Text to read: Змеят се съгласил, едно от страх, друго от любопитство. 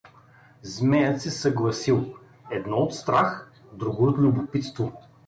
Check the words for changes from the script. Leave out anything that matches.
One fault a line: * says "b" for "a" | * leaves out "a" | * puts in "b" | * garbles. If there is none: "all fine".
all fine